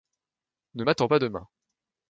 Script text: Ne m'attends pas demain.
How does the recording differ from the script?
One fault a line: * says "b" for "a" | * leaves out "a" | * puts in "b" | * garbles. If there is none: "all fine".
all fine